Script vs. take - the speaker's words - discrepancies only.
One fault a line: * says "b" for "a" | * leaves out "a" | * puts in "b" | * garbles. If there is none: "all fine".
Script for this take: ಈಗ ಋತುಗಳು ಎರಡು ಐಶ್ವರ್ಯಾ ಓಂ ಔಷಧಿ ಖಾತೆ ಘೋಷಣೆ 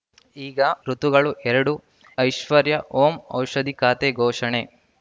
all fine